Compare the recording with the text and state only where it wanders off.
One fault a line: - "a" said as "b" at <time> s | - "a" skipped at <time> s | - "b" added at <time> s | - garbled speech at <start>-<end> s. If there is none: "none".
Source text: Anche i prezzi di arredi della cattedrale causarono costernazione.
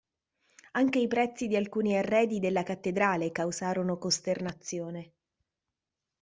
- "alcuni" added at 1.6 s